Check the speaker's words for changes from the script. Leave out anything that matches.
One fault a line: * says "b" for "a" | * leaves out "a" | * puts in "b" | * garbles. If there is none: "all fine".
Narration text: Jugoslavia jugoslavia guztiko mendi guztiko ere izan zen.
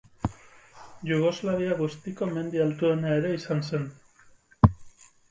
* leaves out "jugoslavia"
* says "altuena" for "guztiko"